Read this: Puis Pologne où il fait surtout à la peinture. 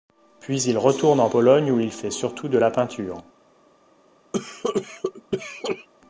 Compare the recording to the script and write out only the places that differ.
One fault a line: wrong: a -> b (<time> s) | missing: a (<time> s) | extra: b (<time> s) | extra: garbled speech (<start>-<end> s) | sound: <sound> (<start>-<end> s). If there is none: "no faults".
extra: il retourne en (0.6 s)
wrong: à -> de (2.5 s)
sound: cough (4.3-5.9 s)